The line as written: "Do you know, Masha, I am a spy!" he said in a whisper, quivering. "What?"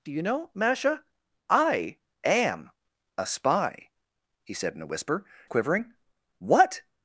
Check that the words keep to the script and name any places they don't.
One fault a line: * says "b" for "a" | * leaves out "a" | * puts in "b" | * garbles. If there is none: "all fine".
all fine